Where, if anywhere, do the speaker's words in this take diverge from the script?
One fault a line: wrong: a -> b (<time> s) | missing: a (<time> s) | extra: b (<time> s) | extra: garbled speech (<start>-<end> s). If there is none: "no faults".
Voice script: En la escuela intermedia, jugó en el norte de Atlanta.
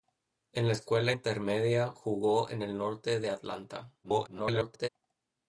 extra: garbled speech (4.0-4.9 s)